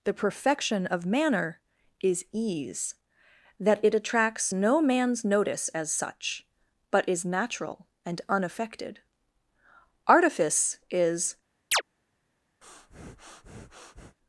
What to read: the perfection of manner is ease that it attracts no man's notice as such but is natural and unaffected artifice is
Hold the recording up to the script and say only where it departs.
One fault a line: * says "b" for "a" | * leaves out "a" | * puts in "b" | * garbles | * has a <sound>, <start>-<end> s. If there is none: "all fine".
* has a chirp, 11.7-11.8 s
* has a breath, 12.6-14.2 s